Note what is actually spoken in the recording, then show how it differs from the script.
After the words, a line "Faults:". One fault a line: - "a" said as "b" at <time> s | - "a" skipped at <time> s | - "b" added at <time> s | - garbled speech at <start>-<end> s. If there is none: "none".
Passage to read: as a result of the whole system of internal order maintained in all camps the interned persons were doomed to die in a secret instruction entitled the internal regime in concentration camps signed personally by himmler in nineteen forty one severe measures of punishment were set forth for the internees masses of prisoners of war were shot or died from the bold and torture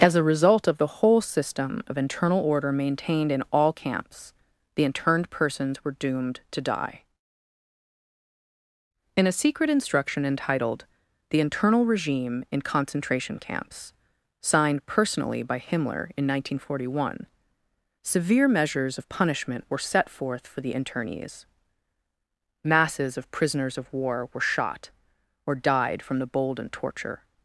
as a result of the whole system of internal order maintained in all camps the interned persons were doomed to die in a secret instruction entitled the internal regime in concentration camps signed personally by himmler in nineteen forty one severe measures of punishment were set forth for the internees masses of prisoners of war were shot or died from the bold and torture
Faults:
none